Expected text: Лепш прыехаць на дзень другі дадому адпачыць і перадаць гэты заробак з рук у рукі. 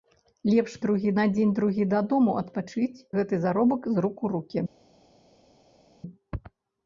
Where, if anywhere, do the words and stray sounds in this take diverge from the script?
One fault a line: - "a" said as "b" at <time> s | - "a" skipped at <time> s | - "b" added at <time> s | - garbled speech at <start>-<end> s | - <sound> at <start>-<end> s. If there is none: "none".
- "прыехаць" said as "другі" at 0.9 s
- "і перадаць" skipped at 3.0 s